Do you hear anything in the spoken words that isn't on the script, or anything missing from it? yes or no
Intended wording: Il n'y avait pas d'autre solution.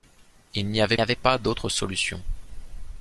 yes